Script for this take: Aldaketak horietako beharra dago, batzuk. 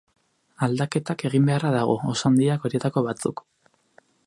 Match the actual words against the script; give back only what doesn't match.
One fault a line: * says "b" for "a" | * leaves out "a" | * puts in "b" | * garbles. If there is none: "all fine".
* says "egin" for "horietako"
* puts in "oso handiak horietako"